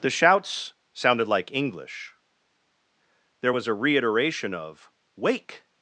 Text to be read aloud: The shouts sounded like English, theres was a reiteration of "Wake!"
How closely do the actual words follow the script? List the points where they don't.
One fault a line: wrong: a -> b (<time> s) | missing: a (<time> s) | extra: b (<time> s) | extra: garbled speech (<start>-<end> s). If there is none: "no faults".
wrong: theres -> there (3.4 s)